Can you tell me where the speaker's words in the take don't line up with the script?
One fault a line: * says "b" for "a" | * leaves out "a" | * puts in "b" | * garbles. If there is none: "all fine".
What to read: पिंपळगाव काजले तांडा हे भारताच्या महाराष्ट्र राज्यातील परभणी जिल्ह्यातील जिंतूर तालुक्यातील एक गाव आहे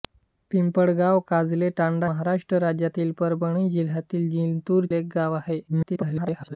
* leaves out "हे भारताच्या"
* leaves out "तालुक्यातील"
* garbles